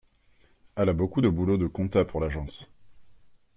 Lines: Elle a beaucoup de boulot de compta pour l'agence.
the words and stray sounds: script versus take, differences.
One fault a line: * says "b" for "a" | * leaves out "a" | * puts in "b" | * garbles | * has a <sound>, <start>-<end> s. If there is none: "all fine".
all fine